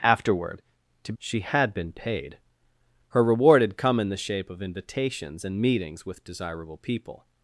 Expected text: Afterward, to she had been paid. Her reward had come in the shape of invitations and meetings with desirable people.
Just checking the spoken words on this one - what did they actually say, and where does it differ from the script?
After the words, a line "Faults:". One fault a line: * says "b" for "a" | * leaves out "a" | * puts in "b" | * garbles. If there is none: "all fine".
Afterward, to she had been paid. Her reward had come in the shape of invitations and meetings with desirable people.
Faults:
all fine